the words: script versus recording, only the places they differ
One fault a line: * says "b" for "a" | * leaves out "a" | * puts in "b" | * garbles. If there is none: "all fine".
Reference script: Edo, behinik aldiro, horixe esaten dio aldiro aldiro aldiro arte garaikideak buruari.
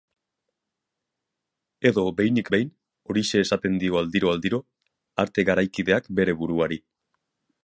* says "behin" for "aldiro"
* leaves out "aldiro"
* puts in "bere"